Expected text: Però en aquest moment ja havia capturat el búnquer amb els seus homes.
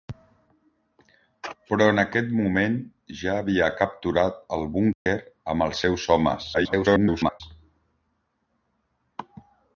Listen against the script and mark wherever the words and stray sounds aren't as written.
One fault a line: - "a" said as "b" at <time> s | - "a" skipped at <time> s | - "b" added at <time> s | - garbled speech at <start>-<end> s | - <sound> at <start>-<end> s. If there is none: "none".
- dropout at 4.9-5.1 s
- garbled speech at 6.5-7.4 s